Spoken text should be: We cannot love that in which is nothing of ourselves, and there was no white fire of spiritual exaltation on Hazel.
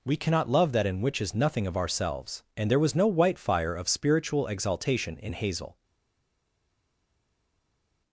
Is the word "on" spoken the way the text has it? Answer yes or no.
no